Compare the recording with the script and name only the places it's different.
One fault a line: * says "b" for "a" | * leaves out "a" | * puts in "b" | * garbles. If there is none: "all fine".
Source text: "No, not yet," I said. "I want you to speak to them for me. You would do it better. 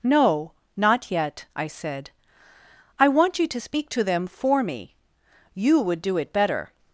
all fine